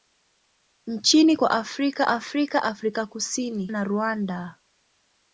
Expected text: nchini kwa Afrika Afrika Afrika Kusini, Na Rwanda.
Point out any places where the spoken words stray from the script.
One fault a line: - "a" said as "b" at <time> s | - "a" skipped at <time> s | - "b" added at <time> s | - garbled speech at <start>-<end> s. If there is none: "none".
none